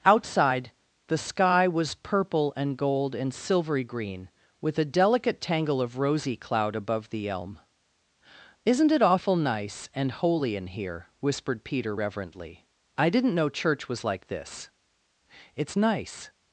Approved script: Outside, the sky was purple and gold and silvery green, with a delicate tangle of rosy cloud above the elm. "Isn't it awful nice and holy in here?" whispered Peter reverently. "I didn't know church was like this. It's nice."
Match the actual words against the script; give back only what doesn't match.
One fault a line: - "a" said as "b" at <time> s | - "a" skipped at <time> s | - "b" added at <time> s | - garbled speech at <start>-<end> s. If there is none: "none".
none